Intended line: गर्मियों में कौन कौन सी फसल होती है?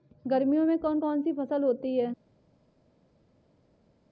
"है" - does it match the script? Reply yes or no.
yes